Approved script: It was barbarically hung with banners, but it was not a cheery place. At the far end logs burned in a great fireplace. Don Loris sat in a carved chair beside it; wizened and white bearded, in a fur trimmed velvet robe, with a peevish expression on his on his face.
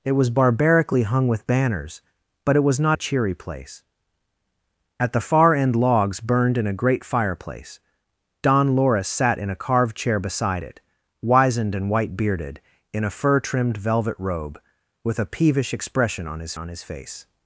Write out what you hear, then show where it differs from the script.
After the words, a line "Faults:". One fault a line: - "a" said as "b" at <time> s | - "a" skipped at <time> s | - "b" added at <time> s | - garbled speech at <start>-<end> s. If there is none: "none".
It was barbarically hung with banners, but it was not a cheery place. At the far end logs burned in a great fireplace. Don Loris sat in a carved chair beside it; wizened and white bearded, in a fur trimmed velvet robe, with a peevish expression on his on his face.
Faults:
none